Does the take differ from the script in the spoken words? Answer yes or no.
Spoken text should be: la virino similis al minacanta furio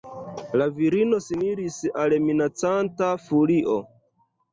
no